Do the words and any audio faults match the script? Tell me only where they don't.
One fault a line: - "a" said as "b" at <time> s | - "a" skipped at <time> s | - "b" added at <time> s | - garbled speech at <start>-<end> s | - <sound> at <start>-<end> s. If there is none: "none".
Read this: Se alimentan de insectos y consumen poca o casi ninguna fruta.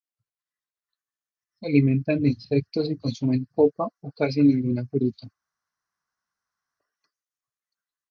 none